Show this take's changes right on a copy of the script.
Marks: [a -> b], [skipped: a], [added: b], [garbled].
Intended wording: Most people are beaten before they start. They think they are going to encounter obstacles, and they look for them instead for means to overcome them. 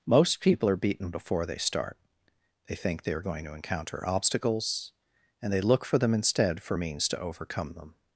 Most people are beaten before they start. They think they are going to encounter obstacles, and they look for them instead for means to overcome them.